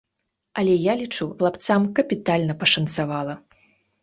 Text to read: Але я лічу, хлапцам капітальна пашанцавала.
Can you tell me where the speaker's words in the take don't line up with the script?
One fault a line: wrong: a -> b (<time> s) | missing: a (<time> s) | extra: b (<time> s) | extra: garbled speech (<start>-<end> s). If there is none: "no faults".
no faults